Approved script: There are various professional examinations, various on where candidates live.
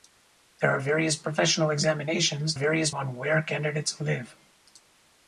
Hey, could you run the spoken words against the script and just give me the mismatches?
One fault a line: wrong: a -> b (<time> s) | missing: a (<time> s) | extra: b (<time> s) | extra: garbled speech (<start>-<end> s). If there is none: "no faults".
no faults